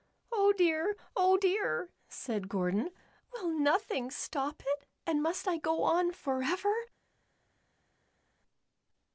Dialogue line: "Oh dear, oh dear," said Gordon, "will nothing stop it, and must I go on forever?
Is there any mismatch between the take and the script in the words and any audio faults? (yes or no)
no